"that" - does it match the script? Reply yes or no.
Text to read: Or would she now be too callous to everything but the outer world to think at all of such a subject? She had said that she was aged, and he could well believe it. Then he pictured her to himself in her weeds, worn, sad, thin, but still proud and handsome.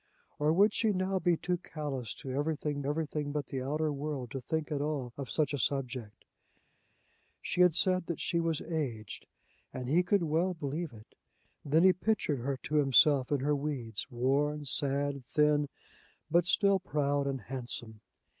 yes